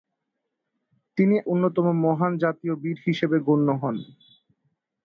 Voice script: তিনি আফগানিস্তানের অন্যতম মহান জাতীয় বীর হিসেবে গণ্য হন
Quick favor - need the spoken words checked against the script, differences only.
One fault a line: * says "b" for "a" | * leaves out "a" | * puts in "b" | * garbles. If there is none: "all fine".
* leaves out "আফগানিস্তানের"